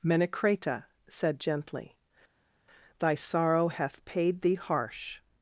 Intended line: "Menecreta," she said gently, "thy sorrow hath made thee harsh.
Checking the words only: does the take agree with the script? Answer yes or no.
no